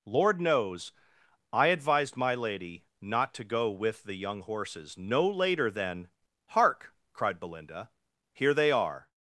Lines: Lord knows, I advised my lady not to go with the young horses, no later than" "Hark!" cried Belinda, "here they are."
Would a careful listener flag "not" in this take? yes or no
no